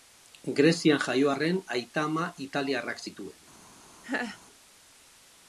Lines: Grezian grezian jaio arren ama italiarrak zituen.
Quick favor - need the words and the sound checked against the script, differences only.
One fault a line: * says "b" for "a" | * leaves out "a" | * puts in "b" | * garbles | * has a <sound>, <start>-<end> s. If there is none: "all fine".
* leaves out "grezian"
* puts in "aita"
* has a laugh, 4.0-4.4 s